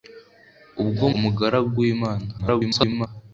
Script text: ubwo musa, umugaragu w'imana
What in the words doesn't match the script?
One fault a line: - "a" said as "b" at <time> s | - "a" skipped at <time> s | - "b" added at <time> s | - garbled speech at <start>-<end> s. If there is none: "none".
- "musa" skipped at 1.1 s
- garbled speech at 2.4-3.1 s